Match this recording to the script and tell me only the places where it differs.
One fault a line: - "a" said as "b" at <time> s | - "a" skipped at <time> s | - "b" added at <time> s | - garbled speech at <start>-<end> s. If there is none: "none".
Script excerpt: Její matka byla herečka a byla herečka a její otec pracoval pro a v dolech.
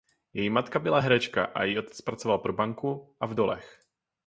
- "byla herečka a" skipped at 1.6 s
- "banku" added at 2.5 s